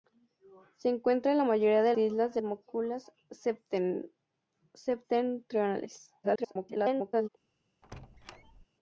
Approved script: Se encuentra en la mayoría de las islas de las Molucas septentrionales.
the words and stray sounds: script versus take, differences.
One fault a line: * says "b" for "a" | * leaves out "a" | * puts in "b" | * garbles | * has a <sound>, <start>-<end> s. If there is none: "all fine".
* leaves out "las"
* leaves out "las"
* garbles
* has a squeak, 7.8-8.7 s